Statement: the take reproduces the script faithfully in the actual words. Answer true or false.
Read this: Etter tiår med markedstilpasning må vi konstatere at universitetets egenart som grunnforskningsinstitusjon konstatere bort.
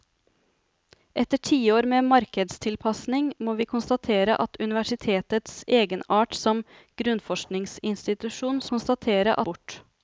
true